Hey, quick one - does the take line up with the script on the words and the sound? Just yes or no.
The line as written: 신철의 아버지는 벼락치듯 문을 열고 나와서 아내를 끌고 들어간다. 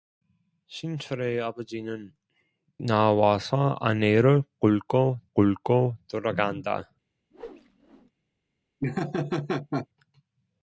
no